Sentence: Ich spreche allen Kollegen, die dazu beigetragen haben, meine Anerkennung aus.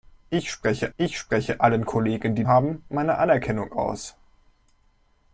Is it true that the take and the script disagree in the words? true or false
true